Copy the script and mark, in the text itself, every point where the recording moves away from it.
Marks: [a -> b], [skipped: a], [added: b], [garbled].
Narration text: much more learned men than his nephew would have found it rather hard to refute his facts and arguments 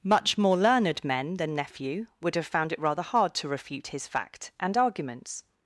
much more learned men than [skipped: his] nephew would have found it rather hard to refute his [facts -> fact] and arguments